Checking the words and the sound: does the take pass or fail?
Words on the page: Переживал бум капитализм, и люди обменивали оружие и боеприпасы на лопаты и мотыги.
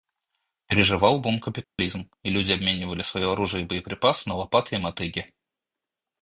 fail